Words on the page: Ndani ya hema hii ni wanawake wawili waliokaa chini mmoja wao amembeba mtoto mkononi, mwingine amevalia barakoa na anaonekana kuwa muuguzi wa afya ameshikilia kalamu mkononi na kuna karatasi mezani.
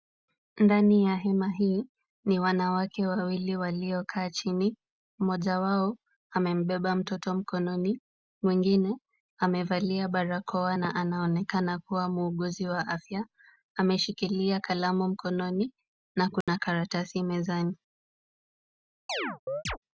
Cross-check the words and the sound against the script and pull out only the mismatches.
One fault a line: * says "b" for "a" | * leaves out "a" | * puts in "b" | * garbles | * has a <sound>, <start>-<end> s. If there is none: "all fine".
* has a dropout, 16.4-16.5 s
* has a chirp, 19.1-19.8 s